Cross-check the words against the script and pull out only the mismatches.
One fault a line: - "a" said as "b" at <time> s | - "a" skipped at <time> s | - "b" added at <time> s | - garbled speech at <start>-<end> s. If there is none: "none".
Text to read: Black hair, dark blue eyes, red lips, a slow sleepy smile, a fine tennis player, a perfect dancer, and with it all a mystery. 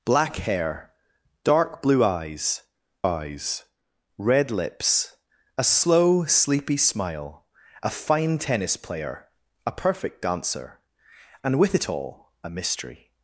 - "eyes" added at 3.0 s